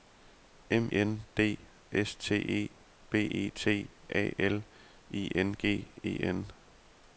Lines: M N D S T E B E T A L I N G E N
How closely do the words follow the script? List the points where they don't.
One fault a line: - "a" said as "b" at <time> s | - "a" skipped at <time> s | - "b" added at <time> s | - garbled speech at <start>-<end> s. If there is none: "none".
none